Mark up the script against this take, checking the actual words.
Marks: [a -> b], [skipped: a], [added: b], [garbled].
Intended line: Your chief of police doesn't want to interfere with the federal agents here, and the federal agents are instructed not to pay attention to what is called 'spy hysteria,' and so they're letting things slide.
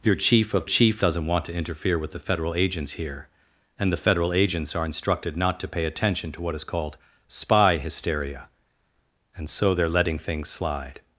Your chief of [police -> chief] doesn't want to interfere with the federal agents here, and the federal agents are instructed not to pay attention to what is called 'spy hysteria,' and so they're letting things slide.